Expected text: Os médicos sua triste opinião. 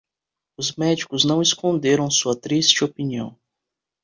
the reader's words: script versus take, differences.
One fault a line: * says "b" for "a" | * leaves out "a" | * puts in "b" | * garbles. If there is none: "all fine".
* puts in "não esconderam"